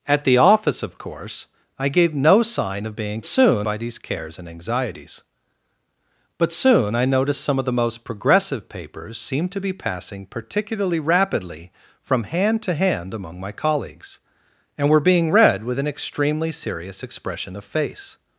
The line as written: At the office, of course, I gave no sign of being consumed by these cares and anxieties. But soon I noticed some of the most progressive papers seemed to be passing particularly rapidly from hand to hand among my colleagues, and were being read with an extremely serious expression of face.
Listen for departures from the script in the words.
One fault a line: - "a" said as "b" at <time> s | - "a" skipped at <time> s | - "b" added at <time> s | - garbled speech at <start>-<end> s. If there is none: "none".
- "consumed" said as "soon" at 3.3 s